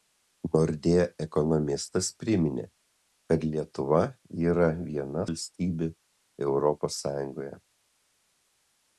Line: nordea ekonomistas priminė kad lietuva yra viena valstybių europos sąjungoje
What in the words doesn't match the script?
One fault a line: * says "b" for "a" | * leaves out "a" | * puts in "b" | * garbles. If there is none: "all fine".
all fine